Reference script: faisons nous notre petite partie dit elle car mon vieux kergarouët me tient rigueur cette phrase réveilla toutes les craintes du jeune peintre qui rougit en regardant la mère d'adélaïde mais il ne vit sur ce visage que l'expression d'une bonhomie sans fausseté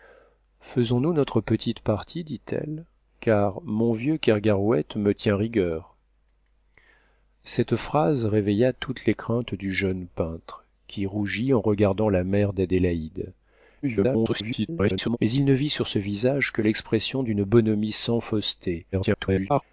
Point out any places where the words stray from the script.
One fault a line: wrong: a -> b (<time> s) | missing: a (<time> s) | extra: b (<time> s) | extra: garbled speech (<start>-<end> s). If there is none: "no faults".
extra: garbled speech (13.8-15.2 s)
extra: garbled speech (18.9-19.6 s)